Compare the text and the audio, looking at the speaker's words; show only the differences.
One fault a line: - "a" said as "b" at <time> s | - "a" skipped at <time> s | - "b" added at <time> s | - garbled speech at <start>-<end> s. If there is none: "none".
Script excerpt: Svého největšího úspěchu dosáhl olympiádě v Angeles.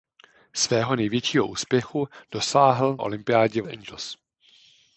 none